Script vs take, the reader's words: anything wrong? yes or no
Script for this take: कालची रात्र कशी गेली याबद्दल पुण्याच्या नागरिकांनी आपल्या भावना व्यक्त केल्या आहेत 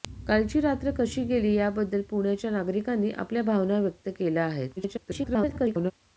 yes